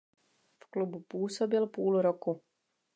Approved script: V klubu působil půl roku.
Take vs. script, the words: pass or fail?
pass